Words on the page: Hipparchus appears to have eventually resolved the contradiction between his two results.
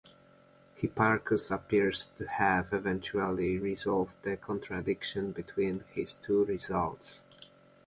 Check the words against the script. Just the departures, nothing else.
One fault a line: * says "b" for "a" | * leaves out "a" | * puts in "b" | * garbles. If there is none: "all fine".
all fine